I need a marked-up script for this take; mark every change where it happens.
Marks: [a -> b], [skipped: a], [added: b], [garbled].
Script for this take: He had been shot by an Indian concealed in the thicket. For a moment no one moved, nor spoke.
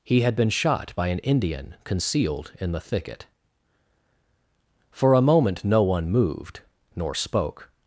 He had been shot by an Indian concealed in the thicket. For a moment no one moved, nor spoke.